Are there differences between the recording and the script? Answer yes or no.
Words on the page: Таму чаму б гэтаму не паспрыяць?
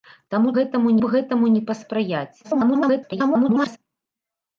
yes